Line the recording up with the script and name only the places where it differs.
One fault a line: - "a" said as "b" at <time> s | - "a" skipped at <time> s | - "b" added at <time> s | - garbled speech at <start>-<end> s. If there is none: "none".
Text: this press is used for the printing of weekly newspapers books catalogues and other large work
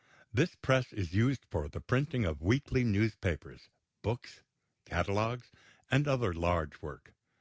none